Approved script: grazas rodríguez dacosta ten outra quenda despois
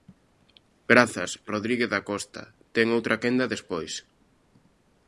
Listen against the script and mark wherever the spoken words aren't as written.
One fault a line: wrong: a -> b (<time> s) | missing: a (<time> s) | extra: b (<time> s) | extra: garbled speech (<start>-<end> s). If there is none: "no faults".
no faults